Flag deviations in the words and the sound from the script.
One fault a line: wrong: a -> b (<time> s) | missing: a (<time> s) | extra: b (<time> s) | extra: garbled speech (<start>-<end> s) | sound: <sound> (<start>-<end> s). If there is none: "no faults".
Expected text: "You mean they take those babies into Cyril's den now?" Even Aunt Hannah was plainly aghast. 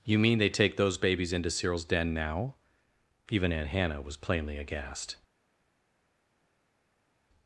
no faults